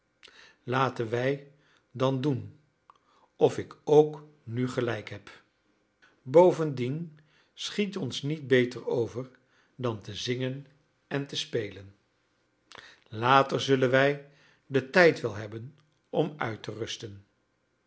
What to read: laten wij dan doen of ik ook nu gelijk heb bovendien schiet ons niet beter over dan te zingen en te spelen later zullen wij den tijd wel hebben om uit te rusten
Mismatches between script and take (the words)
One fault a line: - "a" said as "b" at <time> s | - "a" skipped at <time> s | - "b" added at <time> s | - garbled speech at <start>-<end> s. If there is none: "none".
none